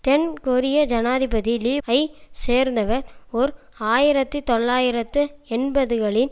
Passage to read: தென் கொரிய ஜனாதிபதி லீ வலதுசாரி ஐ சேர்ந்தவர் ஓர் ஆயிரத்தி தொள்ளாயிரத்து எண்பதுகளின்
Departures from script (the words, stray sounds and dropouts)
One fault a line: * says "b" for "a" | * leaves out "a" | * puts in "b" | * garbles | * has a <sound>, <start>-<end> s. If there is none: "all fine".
* leaves out "வலதுசாரி"